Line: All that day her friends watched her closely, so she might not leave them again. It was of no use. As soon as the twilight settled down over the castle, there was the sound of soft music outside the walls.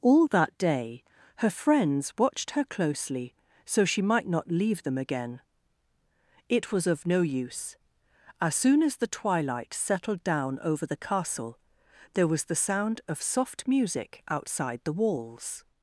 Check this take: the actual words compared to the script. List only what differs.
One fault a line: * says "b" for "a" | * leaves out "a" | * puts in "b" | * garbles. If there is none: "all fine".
all fine